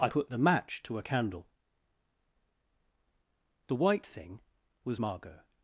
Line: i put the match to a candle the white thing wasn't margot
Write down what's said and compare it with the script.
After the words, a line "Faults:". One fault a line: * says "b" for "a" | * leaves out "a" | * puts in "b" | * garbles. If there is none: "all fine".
i put the match to a candle the white thing was margot
Faults:
* says "was" for "wasn't"